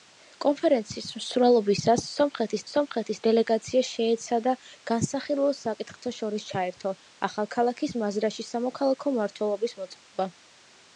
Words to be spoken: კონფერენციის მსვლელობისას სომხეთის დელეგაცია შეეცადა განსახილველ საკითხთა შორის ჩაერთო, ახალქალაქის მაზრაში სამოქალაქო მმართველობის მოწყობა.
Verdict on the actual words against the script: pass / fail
fail